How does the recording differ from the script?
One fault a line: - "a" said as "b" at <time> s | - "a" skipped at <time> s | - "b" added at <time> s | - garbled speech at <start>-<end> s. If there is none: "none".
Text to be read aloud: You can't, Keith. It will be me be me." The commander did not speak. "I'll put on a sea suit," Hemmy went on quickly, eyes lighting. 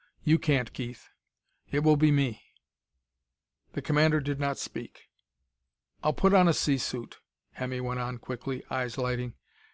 - "be me" skipped at 2.4 s